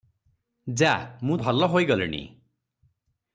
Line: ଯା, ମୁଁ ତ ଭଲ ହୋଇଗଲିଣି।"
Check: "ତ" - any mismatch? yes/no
yes